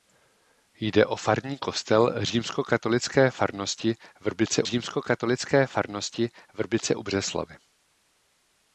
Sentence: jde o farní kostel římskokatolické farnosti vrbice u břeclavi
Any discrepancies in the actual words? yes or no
yes